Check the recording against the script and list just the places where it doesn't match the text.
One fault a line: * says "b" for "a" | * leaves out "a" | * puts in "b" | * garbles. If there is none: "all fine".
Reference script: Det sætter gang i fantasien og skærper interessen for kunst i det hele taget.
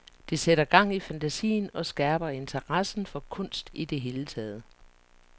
all fine